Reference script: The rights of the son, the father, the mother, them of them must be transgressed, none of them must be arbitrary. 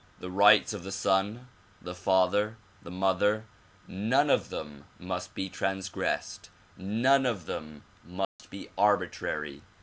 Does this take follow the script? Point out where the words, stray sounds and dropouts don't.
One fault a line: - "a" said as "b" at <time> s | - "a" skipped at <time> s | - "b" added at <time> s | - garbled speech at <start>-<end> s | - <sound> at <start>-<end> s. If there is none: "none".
- "them" said as "none" at 3.9 s
- dropout at 8.2-8.4 s